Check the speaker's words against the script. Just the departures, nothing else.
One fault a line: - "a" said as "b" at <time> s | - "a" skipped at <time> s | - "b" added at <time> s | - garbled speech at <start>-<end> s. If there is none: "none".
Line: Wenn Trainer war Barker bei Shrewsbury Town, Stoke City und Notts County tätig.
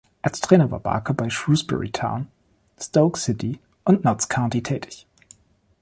- "Wenn" said as "Als" at 0.2 s